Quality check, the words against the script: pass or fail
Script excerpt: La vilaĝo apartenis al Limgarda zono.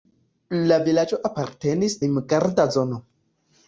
fail